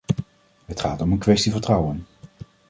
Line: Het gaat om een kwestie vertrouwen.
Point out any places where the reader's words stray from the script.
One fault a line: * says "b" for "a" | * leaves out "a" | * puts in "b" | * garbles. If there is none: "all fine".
all fine